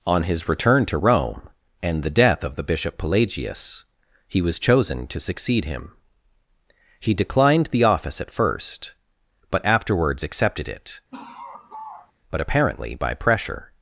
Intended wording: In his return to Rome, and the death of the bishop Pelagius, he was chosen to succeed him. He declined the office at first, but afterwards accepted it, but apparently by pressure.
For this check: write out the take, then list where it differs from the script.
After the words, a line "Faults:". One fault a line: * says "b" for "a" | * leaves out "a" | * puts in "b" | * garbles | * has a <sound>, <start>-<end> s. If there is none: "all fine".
On his return to Rome, and the death of the bishop Pelagius, he was chosen to succeed him. He declined the office at first, but afterwards accepted it, but apparently by pressure.
Faults:
* says "On" for "In"
* has a laugh, 11.1-12.1 s